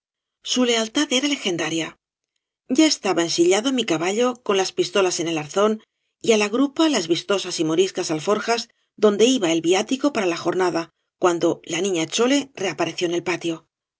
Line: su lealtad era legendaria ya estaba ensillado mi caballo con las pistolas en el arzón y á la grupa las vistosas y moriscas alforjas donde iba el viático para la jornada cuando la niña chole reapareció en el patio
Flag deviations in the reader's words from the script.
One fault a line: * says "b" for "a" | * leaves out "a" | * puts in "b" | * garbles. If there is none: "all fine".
all fine